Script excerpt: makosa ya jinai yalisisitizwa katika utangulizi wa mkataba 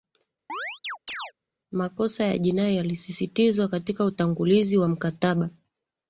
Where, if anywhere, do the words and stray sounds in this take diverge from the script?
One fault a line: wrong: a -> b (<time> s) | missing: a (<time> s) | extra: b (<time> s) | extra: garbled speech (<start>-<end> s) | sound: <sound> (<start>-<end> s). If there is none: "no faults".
sound: chirp (0.5-1.3 s)